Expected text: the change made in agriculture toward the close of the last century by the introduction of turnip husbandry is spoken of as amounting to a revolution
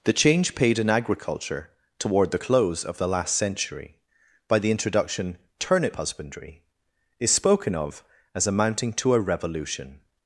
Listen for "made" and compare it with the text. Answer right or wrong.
wrong